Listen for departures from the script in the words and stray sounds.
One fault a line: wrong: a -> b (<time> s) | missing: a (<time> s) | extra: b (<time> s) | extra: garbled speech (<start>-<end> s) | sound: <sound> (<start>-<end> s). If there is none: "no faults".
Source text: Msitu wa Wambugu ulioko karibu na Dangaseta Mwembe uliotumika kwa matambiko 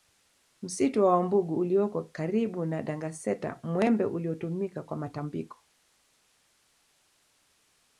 no faults